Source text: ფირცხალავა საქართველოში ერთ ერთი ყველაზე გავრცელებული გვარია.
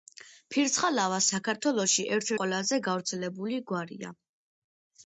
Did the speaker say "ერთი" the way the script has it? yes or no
no